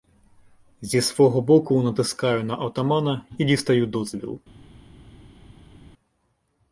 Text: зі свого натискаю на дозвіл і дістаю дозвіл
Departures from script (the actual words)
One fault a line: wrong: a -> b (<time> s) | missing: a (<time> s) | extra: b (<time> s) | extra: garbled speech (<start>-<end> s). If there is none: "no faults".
extra: боку (1.4 s)
wrong: дозвіл -> отамана (2.5 s)